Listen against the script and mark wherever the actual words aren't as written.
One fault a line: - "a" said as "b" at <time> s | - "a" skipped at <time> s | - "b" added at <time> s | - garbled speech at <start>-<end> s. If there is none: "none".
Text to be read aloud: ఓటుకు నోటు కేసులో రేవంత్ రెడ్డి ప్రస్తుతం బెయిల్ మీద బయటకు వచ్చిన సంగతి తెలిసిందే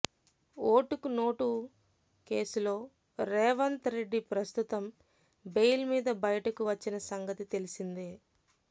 none